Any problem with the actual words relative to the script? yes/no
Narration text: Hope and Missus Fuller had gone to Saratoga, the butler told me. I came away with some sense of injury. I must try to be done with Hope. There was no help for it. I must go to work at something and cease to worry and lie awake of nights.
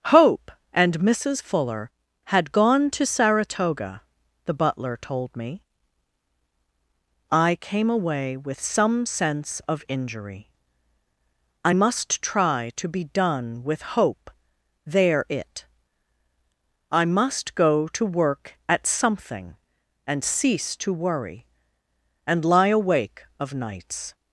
yes